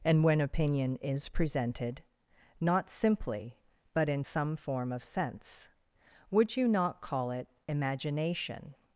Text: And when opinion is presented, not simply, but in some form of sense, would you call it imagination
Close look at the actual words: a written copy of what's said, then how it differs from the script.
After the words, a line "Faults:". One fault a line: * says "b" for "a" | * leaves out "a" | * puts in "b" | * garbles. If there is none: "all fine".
And when opinion is presented, not simply, but in some form of sense, would you not call it imagination
Faults:
* puts in "not"